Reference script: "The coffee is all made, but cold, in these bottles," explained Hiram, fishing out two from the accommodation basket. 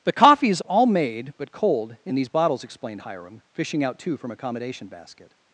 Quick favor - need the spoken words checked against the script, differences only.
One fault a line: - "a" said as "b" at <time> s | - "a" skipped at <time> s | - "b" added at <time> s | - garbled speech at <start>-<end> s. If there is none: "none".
- "the" skipped at 4.3 s